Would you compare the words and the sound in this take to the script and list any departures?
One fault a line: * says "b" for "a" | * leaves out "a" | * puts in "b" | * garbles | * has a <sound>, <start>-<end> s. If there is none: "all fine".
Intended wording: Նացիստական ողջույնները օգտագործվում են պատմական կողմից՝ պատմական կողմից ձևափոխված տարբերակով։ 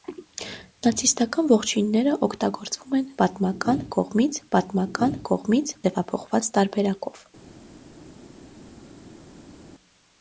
all fine